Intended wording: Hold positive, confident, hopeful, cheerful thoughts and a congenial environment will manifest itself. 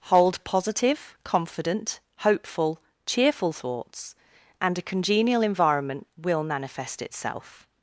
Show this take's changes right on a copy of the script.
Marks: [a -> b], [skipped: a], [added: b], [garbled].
Hold positive, confident, hopeful, cheerful thoughts and a congenial environment will manifest itself.